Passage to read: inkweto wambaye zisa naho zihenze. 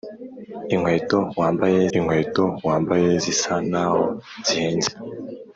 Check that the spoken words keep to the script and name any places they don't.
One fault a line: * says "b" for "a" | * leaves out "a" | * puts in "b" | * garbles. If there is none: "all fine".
* puts in "inkweto wambaye"